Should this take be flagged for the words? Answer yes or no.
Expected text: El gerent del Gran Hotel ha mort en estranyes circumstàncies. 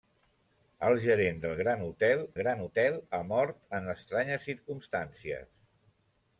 yes